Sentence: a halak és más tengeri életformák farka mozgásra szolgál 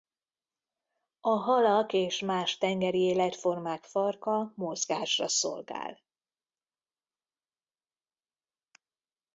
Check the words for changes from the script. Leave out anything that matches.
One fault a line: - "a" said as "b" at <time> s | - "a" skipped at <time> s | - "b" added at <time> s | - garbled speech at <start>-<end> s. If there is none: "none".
none